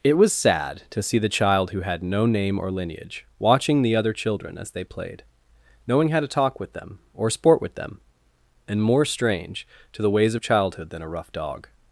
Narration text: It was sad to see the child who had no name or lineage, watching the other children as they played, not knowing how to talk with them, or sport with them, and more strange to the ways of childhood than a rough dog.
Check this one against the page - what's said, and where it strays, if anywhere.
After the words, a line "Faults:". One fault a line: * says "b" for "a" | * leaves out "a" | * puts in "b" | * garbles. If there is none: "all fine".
It was sad to see the child who had no name or lineage, watching the other children as they played, knowing how to talk with them, or sport with them, and more strange to the ways of childhood than a rough dog.
Faults:
* leaves out "not"